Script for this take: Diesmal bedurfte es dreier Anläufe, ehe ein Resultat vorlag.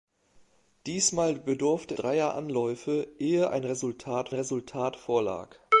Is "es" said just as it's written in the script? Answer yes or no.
no